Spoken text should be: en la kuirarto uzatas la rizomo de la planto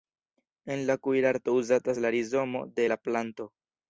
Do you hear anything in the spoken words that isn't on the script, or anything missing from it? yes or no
no